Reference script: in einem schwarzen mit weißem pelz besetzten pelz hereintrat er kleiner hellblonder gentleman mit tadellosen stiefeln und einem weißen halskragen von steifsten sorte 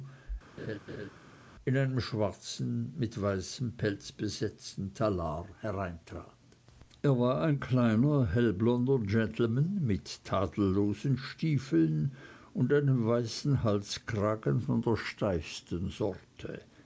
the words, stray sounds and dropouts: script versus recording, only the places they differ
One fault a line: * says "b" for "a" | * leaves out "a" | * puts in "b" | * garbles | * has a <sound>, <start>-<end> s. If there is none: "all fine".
* has a laugh, 0.6-1.1 s
* says "talar" for "pelz"
* puts in "war ein"
* puts in "der"